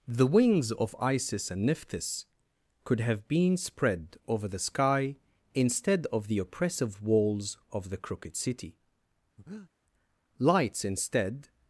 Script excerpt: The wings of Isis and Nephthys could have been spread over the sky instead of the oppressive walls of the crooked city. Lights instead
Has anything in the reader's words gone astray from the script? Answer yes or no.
no